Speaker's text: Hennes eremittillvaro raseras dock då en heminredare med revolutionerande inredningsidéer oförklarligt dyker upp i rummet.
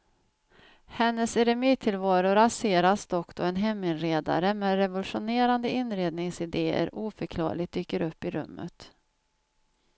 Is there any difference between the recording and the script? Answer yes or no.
no